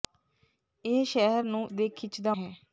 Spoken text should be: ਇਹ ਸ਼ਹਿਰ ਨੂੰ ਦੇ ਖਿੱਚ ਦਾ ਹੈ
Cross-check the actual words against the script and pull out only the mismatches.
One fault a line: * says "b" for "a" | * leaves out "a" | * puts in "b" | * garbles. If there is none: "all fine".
all fine